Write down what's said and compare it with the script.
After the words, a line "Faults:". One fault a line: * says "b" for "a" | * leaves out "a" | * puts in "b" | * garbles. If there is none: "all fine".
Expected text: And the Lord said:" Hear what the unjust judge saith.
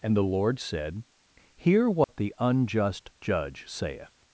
And the Lord said:" Hear what the unjust judge saith.
Faults:
all fine